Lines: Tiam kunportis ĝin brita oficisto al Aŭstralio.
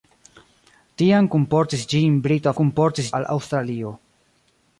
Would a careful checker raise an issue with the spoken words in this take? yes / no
yes